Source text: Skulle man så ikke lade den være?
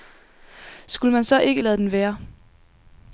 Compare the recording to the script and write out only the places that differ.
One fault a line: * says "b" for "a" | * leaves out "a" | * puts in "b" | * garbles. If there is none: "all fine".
all fine